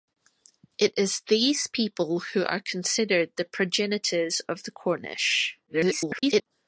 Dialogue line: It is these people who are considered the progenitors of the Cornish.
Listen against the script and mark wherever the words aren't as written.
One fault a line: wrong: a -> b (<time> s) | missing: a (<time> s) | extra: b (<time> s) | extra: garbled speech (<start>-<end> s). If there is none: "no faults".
extra: garbled speech (5.7-6.5 s)